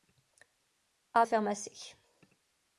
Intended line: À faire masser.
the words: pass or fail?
pass